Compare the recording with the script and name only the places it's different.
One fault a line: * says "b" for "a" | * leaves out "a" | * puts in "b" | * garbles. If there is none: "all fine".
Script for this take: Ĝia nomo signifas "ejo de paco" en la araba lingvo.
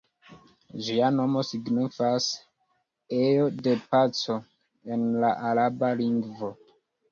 all fine